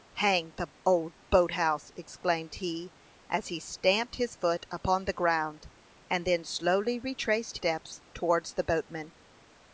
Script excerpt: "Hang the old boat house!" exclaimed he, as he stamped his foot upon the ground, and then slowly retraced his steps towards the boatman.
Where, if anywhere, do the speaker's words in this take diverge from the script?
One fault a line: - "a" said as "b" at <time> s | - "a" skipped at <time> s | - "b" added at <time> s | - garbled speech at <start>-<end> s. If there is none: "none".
- "his" skipped at 7.6 s